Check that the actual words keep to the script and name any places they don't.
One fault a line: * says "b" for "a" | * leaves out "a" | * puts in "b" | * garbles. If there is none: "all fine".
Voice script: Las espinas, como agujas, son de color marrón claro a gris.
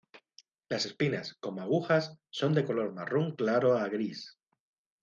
all fine